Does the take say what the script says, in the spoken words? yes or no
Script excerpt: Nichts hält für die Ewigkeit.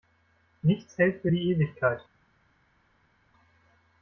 yes